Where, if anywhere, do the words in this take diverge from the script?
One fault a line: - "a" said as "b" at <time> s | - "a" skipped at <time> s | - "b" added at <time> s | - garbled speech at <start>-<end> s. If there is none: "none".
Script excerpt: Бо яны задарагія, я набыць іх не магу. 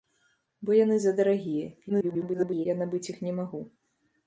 - garbled speech at 1.9-2.7 s